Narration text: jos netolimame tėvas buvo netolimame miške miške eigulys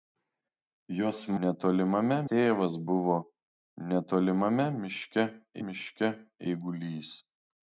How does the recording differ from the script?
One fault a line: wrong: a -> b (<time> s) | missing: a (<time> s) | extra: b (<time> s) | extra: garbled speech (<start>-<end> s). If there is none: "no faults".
no faults